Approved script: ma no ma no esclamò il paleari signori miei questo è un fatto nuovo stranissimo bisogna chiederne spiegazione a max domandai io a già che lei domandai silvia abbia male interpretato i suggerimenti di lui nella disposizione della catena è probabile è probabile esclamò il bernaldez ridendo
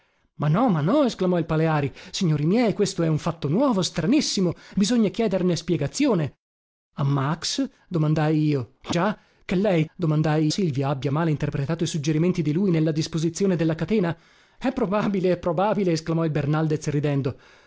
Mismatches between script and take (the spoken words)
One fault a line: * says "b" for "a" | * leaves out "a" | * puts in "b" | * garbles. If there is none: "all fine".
all fine